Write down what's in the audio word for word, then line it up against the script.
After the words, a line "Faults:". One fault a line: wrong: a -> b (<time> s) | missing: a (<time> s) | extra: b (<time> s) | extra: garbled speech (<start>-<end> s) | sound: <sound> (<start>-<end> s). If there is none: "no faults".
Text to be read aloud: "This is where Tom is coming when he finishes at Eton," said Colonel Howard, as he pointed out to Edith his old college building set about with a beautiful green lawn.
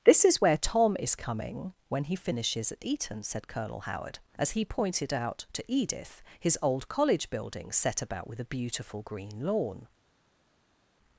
"This is where Tom is coming when he finishes at Eton," said Colonel Howard, as he pointed out to Edith his old college building set about with a beautiful green lawn.
Faults:
no faults